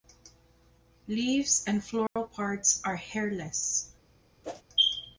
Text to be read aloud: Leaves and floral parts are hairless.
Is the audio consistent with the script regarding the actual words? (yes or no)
yes